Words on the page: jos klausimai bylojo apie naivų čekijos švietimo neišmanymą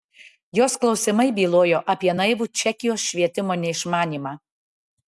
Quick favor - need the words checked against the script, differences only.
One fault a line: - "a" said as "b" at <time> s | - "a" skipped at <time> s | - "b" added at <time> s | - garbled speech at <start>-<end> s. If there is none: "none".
none